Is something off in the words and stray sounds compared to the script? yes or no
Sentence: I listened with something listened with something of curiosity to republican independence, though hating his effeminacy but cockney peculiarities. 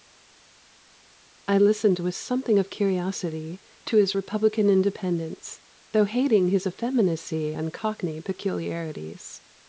yes